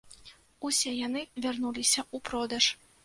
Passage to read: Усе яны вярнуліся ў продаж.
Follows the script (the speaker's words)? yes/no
yes